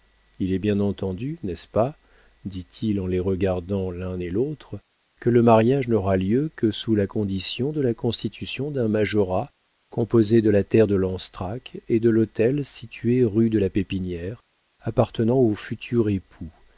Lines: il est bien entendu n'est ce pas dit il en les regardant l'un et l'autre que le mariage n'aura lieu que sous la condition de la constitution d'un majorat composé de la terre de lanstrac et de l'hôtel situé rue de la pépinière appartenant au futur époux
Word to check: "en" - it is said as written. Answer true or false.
true